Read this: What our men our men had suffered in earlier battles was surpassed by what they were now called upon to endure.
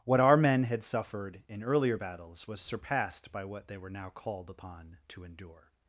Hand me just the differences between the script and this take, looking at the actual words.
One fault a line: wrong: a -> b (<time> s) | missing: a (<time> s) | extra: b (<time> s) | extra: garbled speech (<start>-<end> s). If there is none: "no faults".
missing: our men (0.6 s)